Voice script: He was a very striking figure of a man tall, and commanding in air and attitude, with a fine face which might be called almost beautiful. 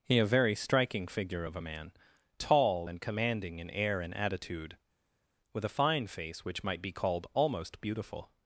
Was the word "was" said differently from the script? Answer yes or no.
yes